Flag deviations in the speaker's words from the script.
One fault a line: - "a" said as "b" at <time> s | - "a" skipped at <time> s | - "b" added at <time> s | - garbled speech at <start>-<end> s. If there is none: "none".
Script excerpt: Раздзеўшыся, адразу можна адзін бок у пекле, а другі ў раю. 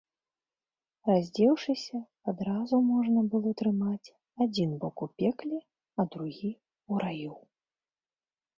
- "было трымаць" added at 3.4 s